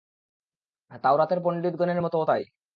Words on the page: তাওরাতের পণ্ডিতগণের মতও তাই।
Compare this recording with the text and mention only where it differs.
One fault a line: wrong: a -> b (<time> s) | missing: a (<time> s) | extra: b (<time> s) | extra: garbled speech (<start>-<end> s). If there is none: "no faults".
no faults